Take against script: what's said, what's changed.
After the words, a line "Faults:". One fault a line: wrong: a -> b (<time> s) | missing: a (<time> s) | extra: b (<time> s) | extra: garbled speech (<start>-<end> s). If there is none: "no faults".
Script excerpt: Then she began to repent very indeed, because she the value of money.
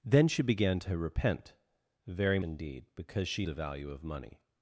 Then she began to repent very indeed, because she the value of money.
Faults:
no faults